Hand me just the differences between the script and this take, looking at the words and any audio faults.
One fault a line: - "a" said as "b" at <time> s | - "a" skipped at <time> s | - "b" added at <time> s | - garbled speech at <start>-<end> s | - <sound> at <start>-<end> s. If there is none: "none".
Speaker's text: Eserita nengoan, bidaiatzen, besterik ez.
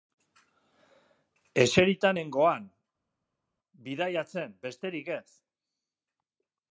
none